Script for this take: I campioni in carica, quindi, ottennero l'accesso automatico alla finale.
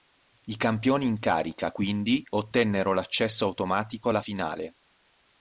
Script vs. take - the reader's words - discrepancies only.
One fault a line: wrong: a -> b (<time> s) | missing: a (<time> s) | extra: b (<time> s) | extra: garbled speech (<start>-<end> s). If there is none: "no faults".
no faults